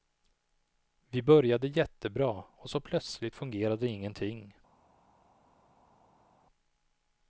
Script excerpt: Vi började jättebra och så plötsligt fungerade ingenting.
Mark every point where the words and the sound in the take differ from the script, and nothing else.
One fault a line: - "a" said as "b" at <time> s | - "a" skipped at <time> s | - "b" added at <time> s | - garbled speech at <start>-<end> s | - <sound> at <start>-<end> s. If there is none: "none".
none